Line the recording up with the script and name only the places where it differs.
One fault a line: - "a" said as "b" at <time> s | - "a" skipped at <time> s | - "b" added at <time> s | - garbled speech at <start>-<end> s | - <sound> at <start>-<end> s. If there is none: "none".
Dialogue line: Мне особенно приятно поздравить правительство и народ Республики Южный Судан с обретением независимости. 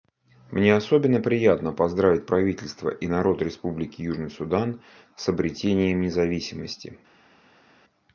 none